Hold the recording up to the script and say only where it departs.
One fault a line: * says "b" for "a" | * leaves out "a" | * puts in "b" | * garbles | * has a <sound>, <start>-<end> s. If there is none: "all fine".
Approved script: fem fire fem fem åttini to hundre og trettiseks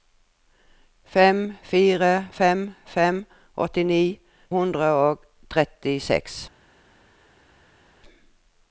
* leaves out "to"